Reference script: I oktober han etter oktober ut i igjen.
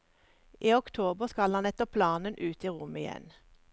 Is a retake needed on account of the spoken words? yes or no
yes